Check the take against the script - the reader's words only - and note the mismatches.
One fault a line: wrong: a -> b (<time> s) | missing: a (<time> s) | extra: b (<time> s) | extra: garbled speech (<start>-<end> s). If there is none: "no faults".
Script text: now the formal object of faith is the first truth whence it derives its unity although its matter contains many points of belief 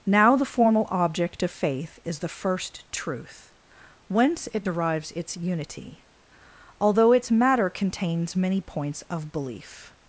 no faults